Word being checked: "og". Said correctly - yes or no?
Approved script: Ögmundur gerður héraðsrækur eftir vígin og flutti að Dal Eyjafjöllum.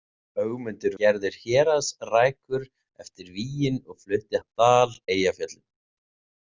yes